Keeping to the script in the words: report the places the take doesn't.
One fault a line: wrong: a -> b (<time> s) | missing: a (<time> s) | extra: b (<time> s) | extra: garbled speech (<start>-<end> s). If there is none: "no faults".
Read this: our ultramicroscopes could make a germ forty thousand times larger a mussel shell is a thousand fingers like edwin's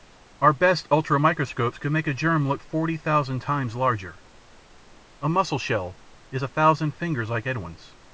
extra: best (0.5 s)
extra: look (2.5 s)